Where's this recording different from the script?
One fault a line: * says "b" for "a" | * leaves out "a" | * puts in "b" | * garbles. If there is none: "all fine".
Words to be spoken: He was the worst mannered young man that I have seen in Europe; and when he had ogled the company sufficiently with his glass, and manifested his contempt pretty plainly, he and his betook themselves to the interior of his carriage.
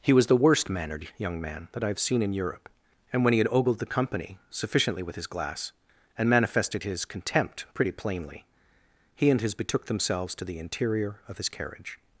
all fine